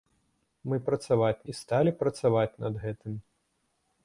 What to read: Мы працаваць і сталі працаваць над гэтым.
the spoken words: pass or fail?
pass